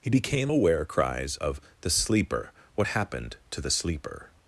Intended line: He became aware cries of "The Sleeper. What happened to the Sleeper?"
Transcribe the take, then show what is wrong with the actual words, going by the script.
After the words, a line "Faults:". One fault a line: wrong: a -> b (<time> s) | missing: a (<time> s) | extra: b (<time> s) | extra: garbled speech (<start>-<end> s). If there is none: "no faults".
He became aware cries of "The Sleeper. What happened to the Sleeper?"
Faults:
no faults